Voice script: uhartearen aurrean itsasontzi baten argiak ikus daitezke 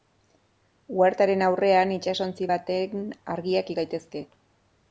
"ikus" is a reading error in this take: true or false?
true